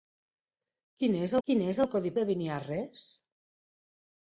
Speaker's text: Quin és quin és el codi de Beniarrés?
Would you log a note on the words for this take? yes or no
no